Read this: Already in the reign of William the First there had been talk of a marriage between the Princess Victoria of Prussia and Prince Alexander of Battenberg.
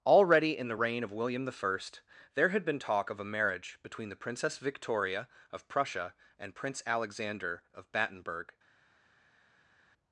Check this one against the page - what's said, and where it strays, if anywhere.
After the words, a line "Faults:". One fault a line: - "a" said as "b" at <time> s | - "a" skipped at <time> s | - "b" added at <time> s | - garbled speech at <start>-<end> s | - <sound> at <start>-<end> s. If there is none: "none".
Already in the reign of William the First there had been talk of a marriage between the Princess Victoria of Prussia and Prince Alexander of Battenberg.
Faults:
none